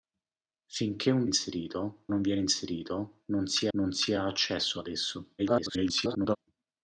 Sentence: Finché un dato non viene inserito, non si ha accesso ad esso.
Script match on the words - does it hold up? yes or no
no